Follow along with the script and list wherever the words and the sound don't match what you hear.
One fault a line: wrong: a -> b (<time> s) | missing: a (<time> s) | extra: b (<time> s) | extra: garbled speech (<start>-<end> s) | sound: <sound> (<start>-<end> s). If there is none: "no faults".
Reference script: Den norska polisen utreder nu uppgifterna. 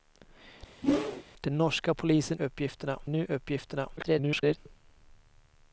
sound: whoosh (0.8-1.2 s)
wrong: utreder -> uppgifterna (2.4 s)
extra: garbled speech (4.0-4.6 s)